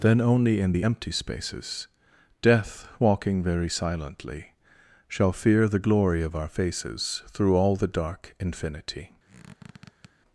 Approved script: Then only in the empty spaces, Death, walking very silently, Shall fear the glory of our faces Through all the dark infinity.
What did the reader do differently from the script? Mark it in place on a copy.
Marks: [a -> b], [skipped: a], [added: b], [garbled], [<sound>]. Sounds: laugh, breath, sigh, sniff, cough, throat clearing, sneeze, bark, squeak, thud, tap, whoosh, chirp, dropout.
Then only in the empty spaces, Death, walking very silently, Shall fear the glory of our faces Through all the dark infinity. [squeak]